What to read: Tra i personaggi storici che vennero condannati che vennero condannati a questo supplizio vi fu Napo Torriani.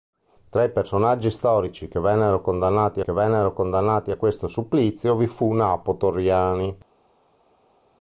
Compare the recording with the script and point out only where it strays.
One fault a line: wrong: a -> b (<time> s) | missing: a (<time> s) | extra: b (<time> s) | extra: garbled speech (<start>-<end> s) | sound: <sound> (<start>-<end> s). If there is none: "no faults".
no faults